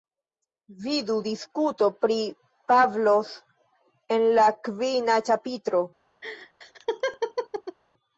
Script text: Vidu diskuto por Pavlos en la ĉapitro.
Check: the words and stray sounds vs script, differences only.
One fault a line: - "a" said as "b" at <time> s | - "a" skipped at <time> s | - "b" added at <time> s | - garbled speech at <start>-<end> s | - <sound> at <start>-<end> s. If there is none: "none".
- "por" said as "pri" at 2.0 s
- "kvina" added at 4.7 s
- laugh at 6.2-7.8 s